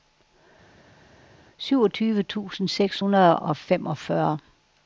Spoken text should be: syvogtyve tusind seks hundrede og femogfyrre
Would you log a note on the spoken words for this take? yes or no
no